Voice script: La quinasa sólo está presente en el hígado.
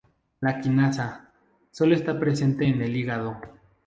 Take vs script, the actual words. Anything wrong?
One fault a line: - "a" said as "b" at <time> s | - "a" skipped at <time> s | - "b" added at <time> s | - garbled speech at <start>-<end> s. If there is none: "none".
none